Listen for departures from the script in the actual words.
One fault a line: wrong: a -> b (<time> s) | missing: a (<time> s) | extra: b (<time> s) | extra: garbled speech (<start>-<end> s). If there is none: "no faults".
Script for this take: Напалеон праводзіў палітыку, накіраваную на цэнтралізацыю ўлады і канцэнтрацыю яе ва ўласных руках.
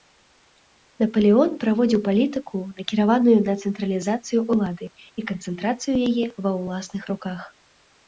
no faults